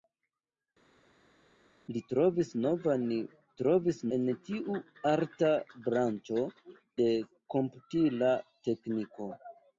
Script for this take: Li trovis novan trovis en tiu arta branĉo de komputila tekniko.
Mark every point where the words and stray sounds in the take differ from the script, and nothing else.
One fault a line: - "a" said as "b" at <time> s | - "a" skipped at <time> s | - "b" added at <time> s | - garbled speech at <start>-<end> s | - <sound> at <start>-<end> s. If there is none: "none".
none